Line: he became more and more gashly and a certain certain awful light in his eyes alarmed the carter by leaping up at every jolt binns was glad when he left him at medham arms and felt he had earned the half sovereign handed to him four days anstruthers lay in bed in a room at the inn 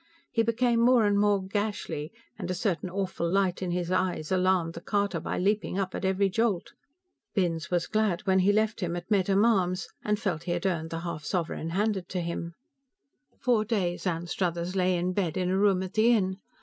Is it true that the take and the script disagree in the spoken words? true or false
true